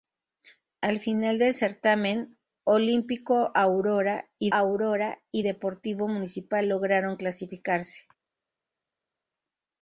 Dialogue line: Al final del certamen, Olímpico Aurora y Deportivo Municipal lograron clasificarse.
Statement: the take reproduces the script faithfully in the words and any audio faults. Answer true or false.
false